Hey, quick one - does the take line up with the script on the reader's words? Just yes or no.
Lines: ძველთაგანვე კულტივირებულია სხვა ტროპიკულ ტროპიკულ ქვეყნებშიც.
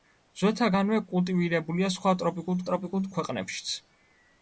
yes